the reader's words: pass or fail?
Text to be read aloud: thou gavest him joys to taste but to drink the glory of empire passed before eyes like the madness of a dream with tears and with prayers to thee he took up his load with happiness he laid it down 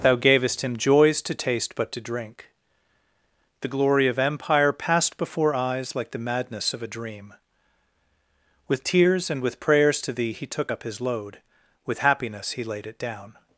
pass